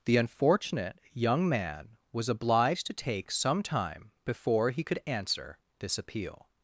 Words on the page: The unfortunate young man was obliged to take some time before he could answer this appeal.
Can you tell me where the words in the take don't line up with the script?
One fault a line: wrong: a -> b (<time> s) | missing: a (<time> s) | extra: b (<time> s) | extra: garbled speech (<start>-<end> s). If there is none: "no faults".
no faults